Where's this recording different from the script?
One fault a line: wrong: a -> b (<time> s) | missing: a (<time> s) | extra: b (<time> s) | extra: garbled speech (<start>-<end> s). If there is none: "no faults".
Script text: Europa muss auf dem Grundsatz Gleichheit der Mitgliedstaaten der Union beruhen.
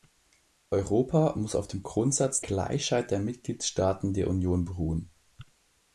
no faults